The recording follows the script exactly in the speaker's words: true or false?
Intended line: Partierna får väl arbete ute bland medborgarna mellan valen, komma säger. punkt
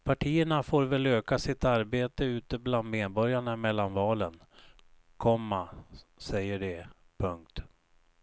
false